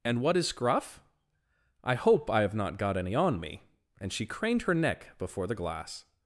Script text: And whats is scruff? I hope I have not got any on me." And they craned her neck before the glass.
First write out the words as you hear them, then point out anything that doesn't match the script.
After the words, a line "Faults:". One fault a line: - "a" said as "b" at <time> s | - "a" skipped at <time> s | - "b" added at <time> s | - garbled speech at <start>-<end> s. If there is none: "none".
And what is scruff? I hope I have not got any on me." And she craned her neck before the glass.
Faults:
- "whats" said as "what" at 0.2 s
- "they" said as "she" at 4.1 s